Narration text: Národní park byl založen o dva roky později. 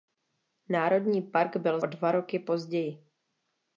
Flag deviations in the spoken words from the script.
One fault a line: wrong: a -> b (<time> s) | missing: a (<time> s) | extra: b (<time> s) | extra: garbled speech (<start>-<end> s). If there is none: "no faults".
missing: založen (1.8 s)